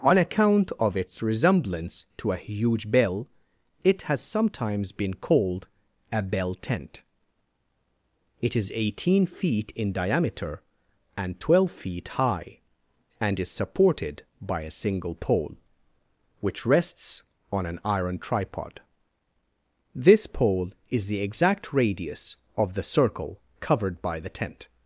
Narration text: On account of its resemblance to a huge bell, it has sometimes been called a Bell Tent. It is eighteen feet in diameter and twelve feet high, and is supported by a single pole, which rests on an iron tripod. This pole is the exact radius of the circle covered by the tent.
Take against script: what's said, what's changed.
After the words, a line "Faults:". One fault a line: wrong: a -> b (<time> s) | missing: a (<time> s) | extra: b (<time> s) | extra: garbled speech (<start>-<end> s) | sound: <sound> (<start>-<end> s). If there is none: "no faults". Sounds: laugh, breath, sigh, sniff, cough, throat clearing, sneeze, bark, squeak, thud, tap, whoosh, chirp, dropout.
On account of its resemblance to a huge bell, it has sometimes been called a Bell Tent. It is eighteen feet in diameter and twelve feet high, and is supported by a single pole, which rests on an iron tripod. This pole is the exact radius of the circle covered by the tent.
Faults:
no faults